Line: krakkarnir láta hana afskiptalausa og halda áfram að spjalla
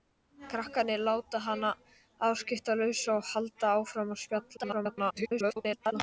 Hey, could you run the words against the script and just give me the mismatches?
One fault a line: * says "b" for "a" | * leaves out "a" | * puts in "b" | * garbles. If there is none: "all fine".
* garbles